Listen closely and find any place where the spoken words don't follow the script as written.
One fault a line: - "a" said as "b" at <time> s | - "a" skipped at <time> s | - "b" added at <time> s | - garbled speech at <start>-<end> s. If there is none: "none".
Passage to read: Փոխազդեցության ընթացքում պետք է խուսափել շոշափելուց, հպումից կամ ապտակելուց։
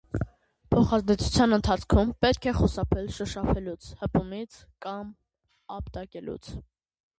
none